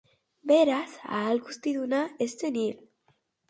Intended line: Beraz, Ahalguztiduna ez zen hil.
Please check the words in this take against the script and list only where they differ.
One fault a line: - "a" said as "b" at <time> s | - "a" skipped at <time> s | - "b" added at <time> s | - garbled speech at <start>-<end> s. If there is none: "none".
none